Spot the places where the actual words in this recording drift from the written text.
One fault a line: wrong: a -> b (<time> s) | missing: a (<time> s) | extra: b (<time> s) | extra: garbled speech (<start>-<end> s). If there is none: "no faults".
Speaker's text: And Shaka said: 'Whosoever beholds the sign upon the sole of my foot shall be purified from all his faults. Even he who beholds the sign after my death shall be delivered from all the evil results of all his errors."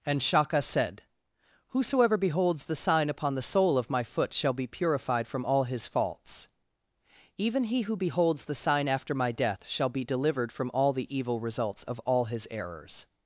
no faults